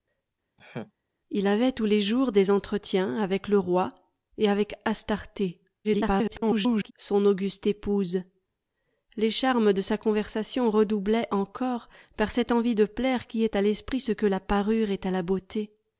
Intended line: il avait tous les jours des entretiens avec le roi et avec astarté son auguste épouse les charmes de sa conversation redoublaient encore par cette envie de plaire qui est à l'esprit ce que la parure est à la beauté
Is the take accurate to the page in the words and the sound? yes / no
no